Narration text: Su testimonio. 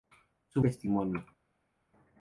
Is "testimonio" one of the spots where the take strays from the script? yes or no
no